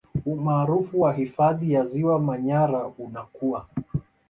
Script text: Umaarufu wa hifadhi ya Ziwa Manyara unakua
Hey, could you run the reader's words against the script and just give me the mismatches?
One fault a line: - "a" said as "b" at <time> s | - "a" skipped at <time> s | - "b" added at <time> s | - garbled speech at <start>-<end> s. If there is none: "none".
none